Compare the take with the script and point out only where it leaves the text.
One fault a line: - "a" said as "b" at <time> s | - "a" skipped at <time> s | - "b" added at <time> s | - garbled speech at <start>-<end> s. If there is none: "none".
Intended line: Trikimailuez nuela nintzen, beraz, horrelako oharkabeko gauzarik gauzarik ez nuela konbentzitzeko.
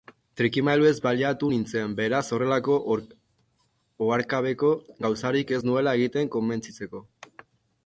- "nuela" said as "baliatu" at 1.1 s
- "gauzarik" skipped at 5.6 s
- "egiten" added at 6.0 s